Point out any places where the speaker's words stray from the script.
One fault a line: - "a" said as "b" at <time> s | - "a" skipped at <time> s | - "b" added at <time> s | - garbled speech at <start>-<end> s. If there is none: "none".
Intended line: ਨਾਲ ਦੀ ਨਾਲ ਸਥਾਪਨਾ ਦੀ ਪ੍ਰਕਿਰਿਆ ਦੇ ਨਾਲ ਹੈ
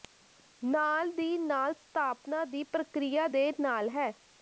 none